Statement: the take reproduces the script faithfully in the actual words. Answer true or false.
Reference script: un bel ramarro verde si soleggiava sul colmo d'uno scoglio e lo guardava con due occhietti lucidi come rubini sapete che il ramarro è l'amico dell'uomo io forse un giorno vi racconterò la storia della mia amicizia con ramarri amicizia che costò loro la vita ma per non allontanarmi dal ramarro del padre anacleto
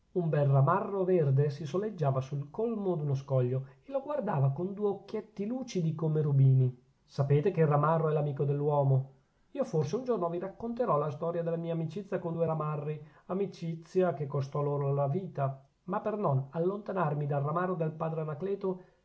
false